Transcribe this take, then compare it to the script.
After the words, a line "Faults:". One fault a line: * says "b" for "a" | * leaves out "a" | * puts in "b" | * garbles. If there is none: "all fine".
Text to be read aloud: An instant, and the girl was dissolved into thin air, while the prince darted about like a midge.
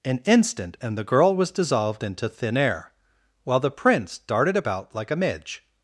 An instant, and the girl was dissolved into thin air, while the prince darted about like a midge.
Faults:
all fine